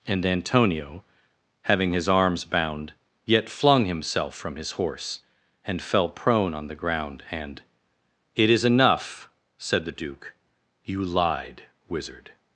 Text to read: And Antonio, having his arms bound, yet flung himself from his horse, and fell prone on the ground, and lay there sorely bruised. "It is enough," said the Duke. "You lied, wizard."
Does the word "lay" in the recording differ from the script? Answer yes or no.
yes